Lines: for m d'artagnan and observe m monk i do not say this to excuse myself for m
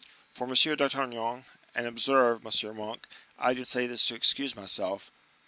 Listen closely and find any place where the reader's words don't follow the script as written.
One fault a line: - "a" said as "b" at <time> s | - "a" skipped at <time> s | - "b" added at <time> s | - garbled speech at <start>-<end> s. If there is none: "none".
- "not" skipped at 3.6 s